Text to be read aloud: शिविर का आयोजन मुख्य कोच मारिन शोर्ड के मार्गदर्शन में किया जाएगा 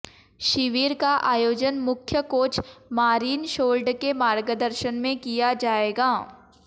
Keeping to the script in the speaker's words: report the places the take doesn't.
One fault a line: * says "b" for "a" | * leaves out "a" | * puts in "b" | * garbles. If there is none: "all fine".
all fine